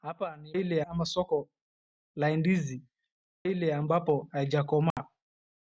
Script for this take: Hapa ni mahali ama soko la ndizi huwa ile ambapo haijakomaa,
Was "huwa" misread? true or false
true